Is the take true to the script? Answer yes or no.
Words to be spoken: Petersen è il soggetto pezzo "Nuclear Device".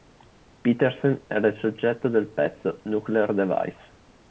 no